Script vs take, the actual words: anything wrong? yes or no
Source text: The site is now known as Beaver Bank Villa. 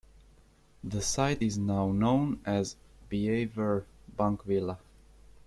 no